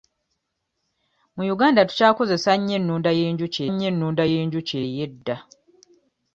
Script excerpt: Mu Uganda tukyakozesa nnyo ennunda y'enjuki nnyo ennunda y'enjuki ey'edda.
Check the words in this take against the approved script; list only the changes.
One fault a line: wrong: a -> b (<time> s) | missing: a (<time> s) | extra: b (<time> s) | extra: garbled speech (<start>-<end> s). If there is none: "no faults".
no faults